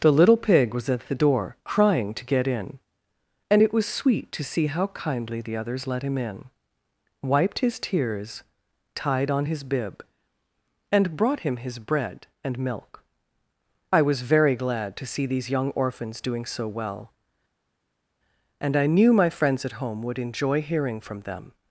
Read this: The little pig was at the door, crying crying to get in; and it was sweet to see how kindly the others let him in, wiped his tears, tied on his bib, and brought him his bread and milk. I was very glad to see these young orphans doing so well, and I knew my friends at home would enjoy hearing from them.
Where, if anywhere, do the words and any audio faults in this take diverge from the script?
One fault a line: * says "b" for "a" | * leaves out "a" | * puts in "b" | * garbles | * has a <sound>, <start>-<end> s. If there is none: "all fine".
* leaves out "crying"